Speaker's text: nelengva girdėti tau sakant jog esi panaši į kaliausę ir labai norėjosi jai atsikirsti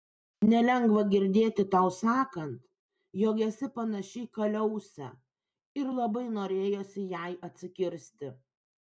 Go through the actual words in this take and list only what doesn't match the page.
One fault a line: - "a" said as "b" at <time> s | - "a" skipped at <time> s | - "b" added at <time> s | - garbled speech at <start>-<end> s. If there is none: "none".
none